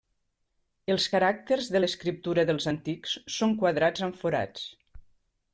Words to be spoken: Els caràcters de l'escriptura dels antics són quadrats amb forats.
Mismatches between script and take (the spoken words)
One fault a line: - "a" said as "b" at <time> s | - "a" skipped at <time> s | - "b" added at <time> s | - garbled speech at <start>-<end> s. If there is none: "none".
none